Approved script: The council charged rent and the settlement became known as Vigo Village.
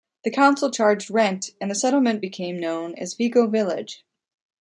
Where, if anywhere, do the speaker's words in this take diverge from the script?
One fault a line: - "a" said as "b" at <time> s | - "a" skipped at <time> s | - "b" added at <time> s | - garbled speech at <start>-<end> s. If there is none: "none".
none